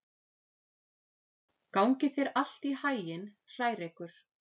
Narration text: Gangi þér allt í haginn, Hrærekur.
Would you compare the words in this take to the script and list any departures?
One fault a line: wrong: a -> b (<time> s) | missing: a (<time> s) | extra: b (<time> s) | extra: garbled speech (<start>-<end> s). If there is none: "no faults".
no faults